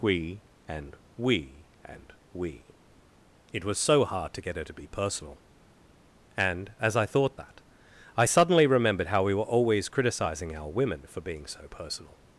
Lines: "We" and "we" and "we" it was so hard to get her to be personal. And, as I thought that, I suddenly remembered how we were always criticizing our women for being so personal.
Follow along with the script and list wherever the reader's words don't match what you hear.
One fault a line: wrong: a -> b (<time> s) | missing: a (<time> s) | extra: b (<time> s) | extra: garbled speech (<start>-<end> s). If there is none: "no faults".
no faults